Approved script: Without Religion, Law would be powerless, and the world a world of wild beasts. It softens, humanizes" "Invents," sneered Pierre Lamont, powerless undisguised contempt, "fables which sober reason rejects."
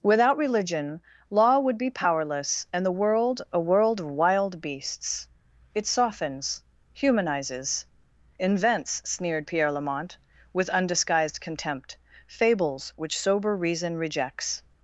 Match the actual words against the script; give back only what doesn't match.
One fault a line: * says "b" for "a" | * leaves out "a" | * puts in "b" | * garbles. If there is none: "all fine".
* says "with" for "powerless"